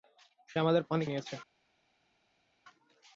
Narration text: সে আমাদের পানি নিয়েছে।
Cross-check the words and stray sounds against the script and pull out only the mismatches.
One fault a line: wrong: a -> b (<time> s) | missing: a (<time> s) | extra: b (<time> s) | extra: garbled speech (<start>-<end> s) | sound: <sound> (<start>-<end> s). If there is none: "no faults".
no faults